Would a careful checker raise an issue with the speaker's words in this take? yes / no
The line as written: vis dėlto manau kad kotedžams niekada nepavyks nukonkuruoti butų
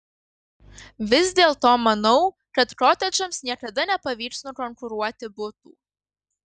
no